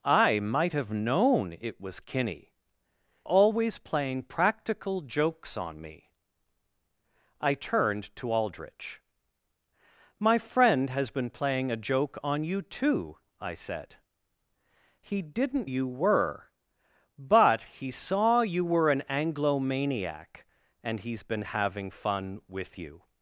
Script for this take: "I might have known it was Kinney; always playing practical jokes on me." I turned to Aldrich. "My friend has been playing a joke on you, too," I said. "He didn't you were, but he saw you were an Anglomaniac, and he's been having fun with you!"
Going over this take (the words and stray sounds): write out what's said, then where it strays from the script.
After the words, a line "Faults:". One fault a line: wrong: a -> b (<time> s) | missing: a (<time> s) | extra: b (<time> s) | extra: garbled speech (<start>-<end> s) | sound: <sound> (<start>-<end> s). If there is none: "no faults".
"I might have known it was Kinney; always playing practical jokes on me." I turned to Aldrich. "My friend has been playing a joke on you, too," I said. "He didn't you were, but he saw you were an Anglomaniac, and he's been having fun with you!"
Faults:
no faults